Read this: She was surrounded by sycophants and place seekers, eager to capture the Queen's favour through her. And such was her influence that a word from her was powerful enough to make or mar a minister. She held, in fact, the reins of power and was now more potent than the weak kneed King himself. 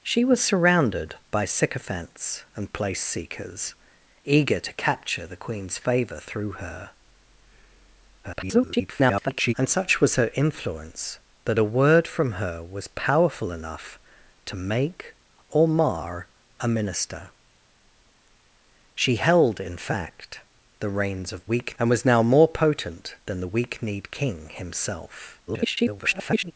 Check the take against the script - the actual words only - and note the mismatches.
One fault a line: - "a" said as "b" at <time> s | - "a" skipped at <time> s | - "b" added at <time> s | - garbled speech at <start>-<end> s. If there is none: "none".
- garbled speech at 8.2-9.5 s
- "power" said as "weak" at 21.4 s
- garbled speech at 25.5-26.5 s